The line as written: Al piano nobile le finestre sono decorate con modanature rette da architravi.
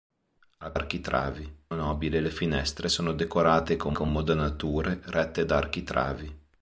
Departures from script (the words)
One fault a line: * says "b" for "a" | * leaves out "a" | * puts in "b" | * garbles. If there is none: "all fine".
* says "architravi" for "piano"
* puts in "con"